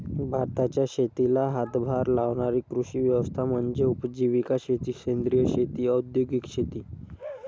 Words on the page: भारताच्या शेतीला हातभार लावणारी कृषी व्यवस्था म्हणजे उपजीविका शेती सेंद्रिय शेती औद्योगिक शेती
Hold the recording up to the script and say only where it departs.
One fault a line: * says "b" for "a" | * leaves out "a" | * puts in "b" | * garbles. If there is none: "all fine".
all fine